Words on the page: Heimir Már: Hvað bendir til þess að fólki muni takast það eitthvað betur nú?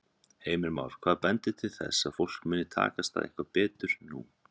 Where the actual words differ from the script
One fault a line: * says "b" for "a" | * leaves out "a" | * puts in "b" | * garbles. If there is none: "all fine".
all fine